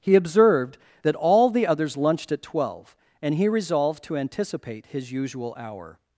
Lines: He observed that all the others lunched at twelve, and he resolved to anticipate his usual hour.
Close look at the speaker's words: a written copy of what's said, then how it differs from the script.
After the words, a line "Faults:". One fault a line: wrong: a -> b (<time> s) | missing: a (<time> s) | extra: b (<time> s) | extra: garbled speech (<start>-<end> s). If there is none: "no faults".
He observed that all the others lunched at twelve, and he resolved to anticipate his usual hour.
Faults:
no faults